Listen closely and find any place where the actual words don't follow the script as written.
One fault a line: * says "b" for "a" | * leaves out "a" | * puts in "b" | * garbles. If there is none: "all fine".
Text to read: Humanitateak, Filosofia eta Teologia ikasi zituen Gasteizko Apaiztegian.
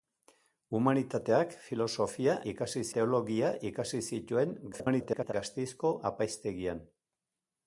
* says "ikasi" for "eta"
* garbles